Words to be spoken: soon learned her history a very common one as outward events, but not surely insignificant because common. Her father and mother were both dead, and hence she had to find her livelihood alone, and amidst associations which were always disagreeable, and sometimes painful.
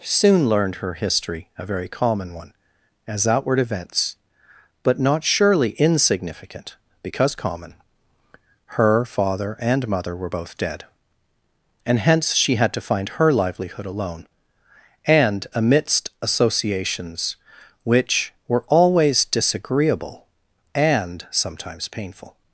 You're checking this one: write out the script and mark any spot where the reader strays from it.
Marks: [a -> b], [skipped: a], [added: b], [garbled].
soon learned her history a very common one as outward events, but not surely insignificant because common. Her father and mother were both dead, and hence she had to find her livelihood alone, and amidst associations which were always disagreeable, and sometimes painful.